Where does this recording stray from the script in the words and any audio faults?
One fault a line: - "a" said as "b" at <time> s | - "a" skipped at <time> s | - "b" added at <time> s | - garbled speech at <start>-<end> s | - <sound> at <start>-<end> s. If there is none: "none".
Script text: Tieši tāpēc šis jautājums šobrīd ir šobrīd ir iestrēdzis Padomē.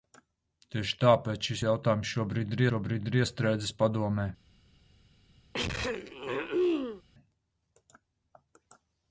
- throat clearing at 5.5-7.0 s